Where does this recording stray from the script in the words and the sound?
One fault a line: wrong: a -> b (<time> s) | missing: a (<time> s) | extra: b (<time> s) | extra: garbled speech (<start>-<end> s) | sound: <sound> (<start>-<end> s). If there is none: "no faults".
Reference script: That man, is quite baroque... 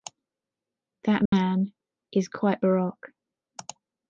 sound: dropout (1.3-1.3 s)